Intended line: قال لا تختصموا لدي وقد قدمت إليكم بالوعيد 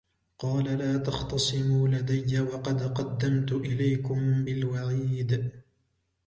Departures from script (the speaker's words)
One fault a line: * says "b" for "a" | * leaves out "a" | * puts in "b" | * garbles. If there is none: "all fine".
all fine